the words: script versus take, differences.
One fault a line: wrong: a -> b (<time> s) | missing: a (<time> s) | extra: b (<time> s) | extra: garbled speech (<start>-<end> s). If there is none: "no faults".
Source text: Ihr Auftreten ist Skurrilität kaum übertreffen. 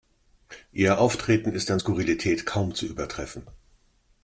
extra: an (1.7 s)
extra: zu (2.8 s)